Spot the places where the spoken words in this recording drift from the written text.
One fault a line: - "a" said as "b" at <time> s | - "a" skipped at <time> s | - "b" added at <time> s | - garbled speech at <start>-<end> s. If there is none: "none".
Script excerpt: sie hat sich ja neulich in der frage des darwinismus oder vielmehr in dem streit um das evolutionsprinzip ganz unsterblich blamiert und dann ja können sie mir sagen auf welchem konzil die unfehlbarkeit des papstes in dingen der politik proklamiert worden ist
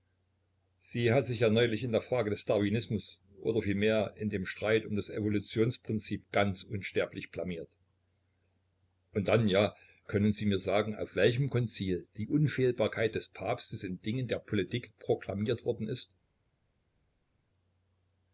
none